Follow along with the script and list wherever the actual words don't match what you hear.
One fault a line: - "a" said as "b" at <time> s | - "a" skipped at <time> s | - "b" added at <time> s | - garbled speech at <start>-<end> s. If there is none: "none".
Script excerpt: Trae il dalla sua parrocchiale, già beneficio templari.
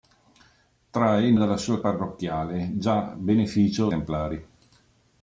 none